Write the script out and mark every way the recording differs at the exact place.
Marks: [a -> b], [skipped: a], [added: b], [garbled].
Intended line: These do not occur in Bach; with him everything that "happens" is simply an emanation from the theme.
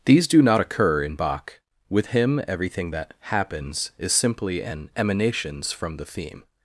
These do not occur in Bach; with him everything that "happens" is simply an [emanation -> emanations] from the theme.